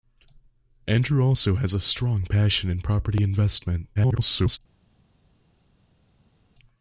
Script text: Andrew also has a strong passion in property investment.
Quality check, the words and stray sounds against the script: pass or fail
fail